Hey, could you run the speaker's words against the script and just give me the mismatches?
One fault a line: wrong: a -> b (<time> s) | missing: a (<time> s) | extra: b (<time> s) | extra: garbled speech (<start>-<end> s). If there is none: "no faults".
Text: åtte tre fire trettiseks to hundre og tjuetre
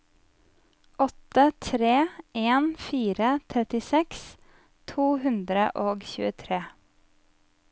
extra: en (2.3 s)